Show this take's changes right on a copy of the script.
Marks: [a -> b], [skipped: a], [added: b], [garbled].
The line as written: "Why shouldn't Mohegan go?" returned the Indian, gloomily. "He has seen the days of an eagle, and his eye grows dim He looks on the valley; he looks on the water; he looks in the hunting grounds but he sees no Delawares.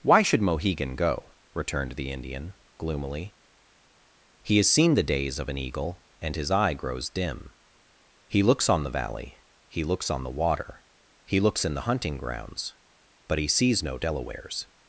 "Why [shouldn't -> should] Mohegan go?" returned the Indian, gloomily. "He has seen the days of an eagle, and his eye grows dim He looks on the valley; he looks on the water; he looks in the hunting grounds but he sees no Delawares.